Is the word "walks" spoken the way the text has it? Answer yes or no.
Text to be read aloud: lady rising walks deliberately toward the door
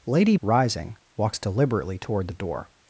yes